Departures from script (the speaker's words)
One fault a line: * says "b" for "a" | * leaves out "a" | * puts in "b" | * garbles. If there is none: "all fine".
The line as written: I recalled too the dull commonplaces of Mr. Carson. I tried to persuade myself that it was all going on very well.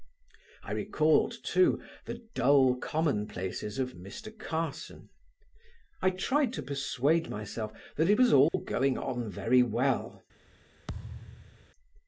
all fine